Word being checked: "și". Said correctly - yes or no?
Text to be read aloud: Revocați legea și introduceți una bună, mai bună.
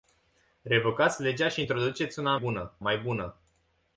yes